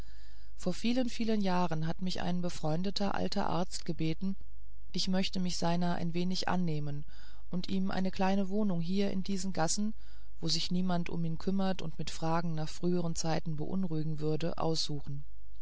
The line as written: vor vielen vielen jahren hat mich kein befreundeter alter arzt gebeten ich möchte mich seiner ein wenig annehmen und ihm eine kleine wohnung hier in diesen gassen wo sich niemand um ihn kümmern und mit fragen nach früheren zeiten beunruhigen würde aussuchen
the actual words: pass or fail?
fail